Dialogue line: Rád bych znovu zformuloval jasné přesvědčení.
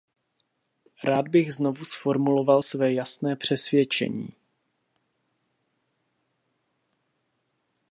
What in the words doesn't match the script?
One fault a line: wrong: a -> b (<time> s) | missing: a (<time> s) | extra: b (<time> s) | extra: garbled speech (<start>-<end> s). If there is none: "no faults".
extra: své (2.6 s)